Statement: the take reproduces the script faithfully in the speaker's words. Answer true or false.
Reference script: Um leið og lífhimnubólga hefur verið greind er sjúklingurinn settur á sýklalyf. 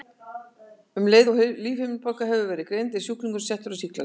true